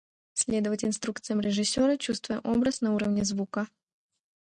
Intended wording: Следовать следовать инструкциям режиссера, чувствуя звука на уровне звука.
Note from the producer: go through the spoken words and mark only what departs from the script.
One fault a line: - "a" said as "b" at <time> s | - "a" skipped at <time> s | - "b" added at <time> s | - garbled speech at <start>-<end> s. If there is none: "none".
- "следовать" skipped at 0.8 s
- "звука" said as "образ" at 2.4 s